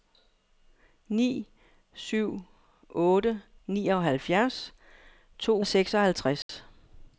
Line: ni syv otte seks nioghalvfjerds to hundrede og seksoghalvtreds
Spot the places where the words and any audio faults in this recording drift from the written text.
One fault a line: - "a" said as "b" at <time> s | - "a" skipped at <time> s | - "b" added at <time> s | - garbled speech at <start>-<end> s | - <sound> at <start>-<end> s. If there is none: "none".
- "seks" skipped at 3.4 s
- "hundrede" skipped at 5.6 s
- dropout at 6.4-6.5 s